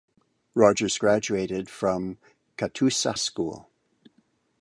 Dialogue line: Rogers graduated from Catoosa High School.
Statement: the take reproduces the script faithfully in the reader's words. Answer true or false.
false